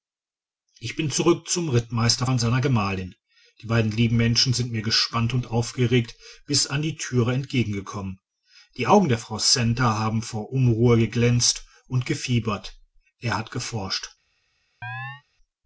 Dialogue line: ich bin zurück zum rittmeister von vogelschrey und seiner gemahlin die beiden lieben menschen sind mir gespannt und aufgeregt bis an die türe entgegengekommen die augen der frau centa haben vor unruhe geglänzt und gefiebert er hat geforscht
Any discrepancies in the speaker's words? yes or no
yes